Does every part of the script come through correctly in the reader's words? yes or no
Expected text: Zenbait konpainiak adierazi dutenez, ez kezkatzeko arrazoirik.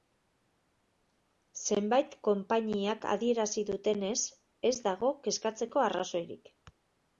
no